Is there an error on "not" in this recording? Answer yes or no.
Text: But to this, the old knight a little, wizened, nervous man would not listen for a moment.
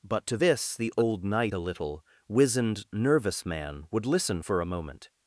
yes